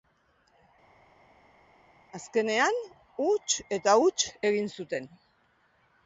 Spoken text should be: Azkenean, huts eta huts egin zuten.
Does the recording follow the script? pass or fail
pass